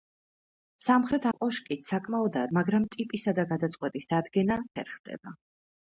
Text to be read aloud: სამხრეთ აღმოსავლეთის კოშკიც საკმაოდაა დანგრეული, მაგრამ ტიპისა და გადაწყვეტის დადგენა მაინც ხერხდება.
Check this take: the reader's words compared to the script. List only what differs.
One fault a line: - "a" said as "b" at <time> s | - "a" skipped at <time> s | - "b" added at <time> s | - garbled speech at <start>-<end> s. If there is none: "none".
- "აღმოსავლეთის" skipped at 1.3 s
- "დანგრეული" skipped at 2.5 s
- "მაინც" skipped at 4.6 s